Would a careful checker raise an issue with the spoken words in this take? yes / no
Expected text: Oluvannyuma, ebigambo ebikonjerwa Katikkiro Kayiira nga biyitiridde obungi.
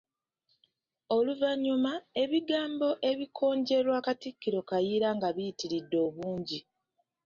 no